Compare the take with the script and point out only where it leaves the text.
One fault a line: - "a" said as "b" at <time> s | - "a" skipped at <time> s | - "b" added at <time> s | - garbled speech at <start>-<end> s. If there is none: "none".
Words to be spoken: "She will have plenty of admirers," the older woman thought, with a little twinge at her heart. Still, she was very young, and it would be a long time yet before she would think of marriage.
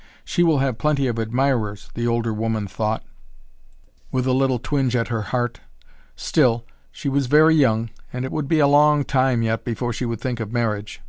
none